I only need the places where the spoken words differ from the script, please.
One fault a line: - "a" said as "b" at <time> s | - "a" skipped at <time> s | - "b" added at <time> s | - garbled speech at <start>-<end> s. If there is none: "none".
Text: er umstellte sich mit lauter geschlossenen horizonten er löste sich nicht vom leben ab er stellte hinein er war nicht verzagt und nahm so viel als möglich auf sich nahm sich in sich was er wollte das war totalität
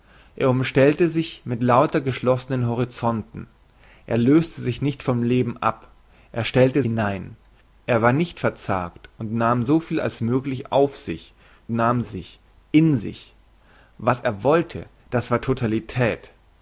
none